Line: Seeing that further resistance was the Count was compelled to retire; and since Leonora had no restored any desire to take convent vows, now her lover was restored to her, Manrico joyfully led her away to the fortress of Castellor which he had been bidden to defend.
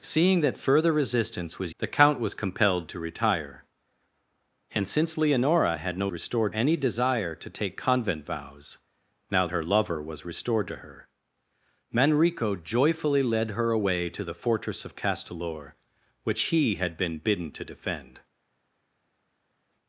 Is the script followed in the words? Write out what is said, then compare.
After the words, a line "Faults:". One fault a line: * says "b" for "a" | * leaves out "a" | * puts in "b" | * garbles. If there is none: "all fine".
Seeing that further resistance was the Count was compelled to retire; and since Leonora had no restored any desire to take convent vows, now her lover was restored to her, Manrico joyfully led her away to the fortress of Castellor which he had been bidden to defend.
Faults:
all fine